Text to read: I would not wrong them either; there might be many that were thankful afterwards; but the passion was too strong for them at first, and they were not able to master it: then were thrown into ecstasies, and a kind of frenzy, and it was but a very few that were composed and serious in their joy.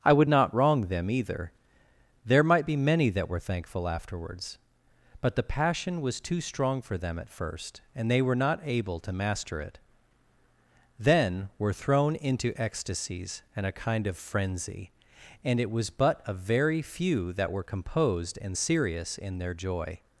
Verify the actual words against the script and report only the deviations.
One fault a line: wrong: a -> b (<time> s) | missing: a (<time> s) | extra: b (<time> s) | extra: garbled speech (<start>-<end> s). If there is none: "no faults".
no faults